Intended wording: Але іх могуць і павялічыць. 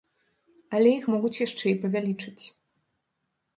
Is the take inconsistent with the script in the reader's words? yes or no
yes